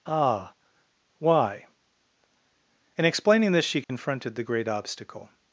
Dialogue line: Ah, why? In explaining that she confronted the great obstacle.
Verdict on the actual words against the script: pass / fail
fail